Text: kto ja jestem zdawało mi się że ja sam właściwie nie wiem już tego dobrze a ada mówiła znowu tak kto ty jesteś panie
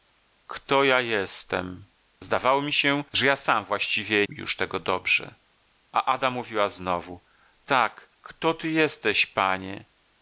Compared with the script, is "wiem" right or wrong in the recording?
wrong